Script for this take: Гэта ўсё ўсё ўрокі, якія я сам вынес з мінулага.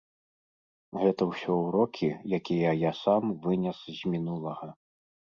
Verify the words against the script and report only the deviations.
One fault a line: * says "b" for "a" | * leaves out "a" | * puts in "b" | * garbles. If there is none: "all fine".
* leaves out "ўсё"